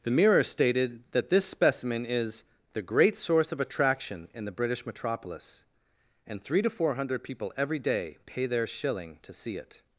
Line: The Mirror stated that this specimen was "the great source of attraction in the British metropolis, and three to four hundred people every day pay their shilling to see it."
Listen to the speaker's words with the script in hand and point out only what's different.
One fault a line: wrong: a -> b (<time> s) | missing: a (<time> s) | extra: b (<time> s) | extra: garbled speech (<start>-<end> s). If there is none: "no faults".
wrong: was -> is (2.0 s)